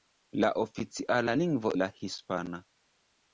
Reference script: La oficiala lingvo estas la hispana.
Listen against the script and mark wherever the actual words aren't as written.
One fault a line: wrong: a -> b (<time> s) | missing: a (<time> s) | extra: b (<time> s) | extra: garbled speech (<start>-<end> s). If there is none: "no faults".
missing: estas (1.7 s)